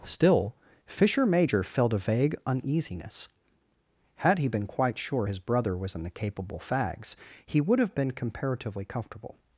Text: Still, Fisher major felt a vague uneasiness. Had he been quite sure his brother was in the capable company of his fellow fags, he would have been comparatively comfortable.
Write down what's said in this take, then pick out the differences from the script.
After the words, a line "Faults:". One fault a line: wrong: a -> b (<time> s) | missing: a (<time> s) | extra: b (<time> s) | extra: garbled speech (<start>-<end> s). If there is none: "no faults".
Still, Fisher major felt a vague uneasiness. Had he been quite sure his brother was in the capable fags, he would have been comparatively comfortable.
Faults:
missing: company of his fellow (6.6 s)